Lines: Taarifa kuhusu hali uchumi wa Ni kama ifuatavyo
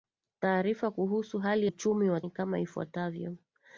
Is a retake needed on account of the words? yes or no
no